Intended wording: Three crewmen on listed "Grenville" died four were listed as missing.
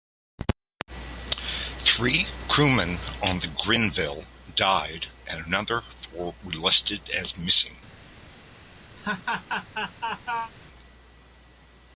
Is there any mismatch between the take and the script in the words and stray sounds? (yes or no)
yes